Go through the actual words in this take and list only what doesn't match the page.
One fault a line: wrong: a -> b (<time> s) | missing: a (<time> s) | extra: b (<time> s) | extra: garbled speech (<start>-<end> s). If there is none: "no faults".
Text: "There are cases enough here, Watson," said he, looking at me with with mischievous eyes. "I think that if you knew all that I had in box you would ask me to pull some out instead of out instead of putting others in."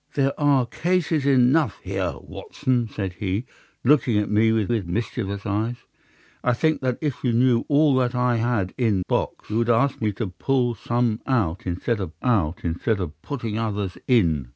no faults